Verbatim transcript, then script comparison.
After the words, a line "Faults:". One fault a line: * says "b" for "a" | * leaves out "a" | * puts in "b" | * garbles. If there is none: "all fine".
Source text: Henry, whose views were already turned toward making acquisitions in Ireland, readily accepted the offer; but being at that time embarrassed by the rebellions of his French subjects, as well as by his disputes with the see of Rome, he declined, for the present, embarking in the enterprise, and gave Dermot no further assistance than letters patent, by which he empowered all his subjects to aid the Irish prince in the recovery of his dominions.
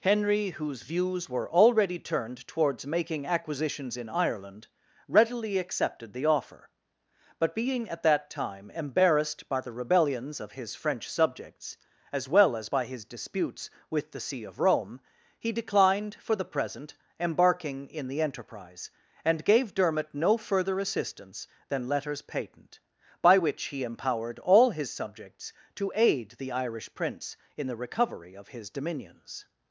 Henry, whose views were already turned towards making acquisitions in Ireland, readily accepted the offer; but being at that time embarrassed by the rebellions of his French subjects, as well as by his disputes with the see of Rome, he declined, for the present, embarking in the enterprise, and gave Dermot no further assistance than letters patent, by which he empowered all his subjects to aid the Irish prince in the recovery of his dominions.
Faults:
* says "towards" for "toward"